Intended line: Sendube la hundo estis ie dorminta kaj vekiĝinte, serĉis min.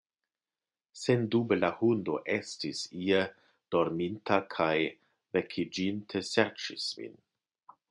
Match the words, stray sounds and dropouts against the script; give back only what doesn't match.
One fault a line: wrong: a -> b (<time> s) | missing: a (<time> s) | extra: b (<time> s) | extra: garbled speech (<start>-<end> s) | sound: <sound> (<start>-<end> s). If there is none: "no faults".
no faults